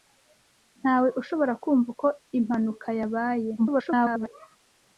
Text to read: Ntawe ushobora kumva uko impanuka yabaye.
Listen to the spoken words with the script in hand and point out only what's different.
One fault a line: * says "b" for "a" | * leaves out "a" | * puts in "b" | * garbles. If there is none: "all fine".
* garbles